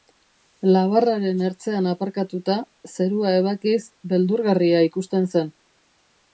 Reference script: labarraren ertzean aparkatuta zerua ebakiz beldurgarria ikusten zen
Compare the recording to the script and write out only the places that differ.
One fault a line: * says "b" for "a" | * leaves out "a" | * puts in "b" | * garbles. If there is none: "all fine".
all fine